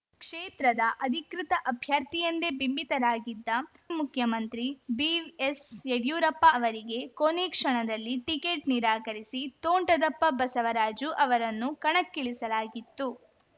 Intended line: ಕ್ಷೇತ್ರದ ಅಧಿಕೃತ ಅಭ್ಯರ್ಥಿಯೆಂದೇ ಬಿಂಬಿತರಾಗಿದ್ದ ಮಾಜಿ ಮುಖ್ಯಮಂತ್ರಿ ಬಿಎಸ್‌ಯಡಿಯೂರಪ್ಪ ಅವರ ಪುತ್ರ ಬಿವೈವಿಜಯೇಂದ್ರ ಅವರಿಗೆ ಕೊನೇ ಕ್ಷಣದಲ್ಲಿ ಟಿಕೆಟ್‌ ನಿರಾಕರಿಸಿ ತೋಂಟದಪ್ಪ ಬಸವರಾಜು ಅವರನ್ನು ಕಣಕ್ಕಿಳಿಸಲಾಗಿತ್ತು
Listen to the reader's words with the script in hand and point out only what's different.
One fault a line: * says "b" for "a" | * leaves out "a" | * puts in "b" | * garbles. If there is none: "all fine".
* leaves out "ಮಾಜಿ"
* leaves out "ಅವರ ಪುತ್ರ ಬಿವೈವಿಜಯೇಂದ್ರ"